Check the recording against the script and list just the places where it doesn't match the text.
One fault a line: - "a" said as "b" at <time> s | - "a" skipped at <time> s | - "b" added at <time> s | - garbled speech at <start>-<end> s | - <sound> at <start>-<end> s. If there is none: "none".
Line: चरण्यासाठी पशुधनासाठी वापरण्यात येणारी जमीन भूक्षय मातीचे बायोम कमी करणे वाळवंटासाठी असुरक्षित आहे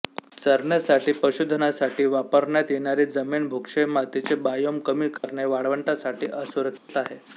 - dropout at 5.2-5.2 s
- dropout at 6.8-6.9 s